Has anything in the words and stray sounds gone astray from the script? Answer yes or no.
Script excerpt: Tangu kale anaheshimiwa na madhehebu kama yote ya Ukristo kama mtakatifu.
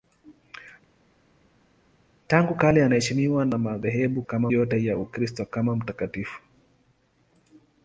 no